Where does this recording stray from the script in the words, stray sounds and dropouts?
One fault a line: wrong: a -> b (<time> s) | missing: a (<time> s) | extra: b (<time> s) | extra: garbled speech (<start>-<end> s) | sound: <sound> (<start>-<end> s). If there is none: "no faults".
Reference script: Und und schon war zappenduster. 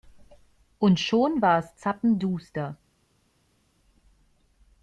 missing: und (1.0 s)
extra: es (1.6 s)